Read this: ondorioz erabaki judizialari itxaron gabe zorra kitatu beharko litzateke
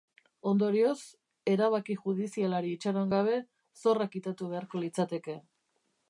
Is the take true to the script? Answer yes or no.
yes